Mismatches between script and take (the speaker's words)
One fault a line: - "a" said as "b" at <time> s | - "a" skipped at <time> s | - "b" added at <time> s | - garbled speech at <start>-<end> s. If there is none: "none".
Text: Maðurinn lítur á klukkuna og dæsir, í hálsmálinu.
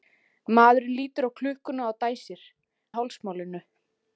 none